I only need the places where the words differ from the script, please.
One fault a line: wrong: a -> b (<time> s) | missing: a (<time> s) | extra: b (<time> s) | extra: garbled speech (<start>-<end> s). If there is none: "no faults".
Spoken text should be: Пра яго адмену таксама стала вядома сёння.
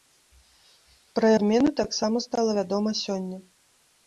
missing: яго (1.3 s)